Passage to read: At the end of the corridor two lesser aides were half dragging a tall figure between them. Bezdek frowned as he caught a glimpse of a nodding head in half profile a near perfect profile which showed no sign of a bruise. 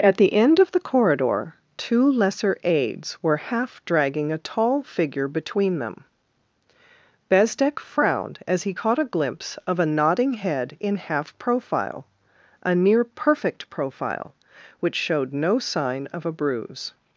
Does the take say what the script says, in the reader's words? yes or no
yes